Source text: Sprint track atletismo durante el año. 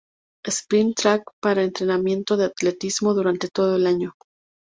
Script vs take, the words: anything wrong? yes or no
yes